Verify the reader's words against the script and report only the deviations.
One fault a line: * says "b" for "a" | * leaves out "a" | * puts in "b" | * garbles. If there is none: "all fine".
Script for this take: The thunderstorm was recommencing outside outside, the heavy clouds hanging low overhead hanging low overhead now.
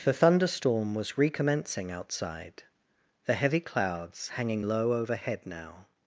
* leaves out "outside"
* leaves out "hanging low overhead"